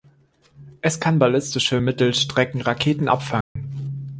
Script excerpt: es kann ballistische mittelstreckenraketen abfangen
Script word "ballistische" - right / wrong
right